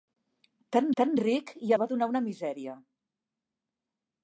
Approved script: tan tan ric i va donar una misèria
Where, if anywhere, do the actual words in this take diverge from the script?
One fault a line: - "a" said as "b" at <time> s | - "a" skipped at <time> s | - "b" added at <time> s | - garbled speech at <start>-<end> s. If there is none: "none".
none